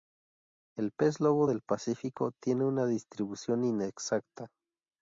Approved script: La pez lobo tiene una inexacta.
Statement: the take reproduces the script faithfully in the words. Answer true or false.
false